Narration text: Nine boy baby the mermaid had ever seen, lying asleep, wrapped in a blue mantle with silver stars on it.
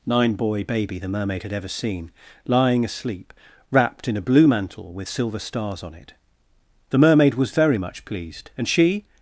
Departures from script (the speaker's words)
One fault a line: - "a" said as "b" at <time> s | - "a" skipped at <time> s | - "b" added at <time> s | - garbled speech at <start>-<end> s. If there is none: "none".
- "The mermaid was very much pleased and she" added at 6.9 s